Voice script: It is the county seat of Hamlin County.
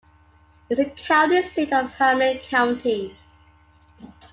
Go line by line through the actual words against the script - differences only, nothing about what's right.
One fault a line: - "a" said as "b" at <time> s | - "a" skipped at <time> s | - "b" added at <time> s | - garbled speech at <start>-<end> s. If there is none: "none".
none